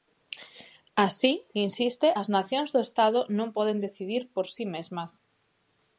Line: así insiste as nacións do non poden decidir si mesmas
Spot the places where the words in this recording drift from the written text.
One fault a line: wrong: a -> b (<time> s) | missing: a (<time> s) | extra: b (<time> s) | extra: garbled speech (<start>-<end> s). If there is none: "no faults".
extra: estado (2.9 s)
extra: por (4.3 s)